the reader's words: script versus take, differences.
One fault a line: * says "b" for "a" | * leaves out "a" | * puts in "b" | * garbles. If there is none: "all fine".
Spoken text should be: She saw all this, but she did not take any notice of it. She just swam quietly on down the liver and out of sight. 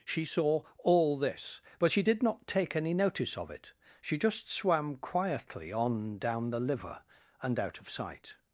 all fine